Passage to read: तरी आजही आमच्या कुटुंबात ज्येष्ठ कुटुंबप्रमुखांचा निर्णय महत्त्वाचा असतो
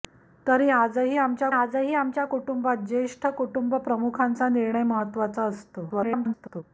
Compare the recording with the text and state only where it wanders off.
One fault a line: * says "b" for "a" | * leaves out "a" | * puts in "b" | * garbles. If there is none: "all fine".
* puts in "आजही आमच्या"
* garbles